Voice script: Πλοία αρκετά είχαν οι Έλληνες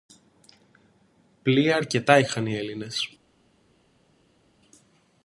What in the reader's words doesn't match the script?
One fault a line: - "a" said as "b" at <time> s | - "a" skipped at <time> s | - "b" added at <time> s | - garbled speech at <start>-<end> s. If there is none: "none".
none